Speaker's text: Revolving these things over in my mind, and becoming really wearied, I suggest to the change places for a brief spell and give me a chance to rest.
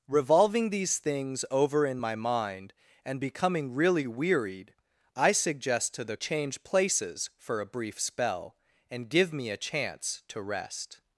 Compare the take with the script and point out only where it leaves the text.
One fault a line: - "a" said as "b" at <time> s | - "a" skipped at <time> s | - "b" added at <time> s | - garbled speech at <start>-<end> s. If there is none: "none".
none